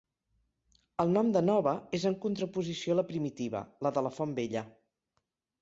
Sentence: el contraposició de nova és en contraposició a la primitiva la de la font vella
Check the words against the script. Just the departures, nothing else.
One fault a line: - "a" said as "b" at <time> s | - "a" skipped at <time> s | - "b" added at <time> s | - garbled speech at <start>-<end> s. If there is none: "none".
- "contraposició" said as "nom" at 1.2 s